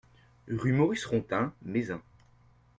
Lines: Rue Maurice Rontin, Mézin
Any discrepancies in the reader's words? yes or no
no